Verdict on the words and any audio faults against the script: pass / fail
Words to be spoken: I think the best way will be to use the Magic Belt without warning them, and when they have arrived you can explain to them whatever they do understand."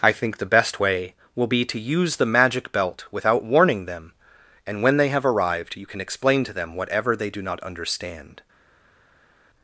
fail